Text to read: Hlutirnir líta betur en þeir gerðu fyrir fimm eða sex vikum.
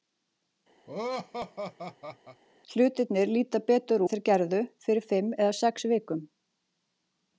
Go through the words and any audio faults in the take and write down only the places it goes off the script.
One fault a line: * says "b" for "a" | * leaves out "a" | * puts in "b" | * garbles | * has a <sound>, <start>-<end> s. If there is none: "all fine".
* has a laugh, 0.9-2.4 s